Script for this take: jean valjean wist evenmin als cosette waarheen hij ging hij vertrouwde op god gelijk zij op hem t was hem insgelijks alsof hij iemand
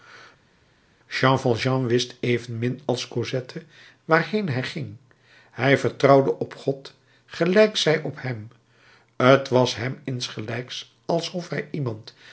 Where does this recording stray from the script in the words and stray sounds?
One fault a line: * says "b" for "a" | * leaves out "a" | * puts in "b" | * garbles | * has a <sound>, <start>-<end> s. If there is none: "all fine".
all fine